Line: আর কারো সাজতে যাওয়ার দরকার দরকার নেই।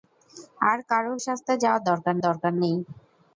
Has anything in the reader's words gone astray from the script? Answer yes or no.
no